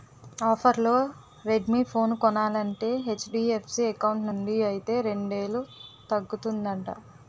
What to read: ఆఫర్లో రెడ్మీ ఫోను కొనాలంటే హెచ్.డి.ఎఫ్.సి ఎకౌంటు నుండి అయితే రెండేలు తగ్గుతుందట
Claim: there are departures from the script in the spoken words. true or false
false